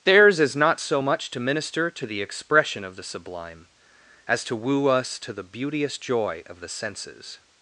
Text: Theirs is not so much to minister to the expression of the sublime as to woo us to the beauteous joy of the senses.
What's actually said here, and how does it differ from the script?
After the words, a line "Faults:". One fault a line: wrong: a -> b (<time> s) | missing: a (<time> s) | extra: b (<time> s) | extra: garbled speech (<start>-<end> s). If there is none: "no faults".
Theirs is not so much to minister to the expression of the sublime as to woo us to the beauteous joy of the senses.
Faults:
no faults